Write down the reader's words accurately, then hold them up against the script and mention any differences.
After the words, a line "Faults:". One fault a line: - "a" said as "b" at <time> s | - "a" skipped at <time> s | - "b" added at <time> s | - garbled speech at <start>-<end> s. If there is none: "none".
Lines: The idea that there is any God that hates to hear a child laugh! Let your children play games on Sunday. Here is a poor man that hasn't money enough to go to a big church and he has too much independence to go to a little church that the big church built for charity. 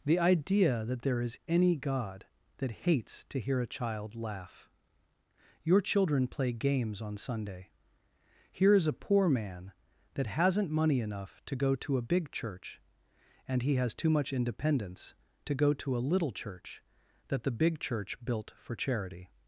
The idea that there is any God that hates to hear a child laugh! your children play games on Sunday. Here is a poor man that hasn't money enough to go to a big church and he has too much independence to go to a little church that the big church built for charity.
Faults:
- "Let" skipped at 4.7 s